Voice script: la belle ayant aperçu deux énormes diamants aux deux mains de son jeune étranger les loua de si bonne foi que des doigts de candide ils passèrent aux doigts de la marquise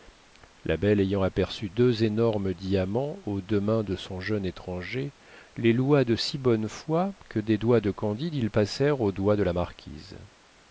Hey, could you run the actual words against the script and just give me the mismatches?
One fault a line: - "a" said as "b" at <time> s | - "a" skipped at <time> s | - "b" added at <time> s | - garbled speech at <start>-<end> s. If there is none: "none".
none